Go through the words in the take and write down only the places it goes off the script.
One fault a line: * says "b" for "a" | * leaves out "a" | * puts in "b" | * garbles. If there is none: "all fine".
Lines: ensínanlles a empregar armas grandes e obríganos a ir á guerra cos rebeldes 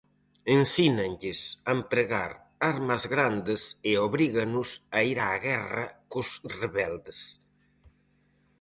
all fine